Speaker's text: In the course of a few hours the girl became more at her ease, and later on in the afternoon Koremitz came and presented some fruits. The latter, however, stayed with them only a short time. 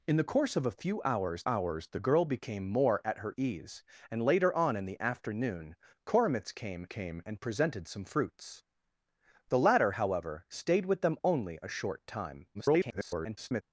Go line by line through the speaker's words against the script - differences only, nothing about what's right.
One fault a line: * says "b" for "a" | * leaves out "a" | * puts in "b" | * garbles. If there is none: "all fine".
* puts in "hours"
* puts in "came"
* garbles